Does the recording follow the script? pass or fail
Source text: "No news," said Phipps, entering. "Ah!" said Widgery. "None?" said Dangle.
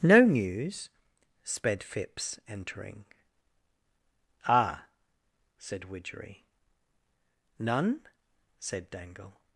fail